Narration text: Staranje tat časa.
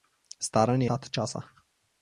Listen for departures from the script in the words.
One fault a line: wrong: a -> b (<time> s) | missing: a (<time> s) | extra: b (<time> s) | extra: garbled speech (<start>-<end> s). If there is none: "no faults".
no faults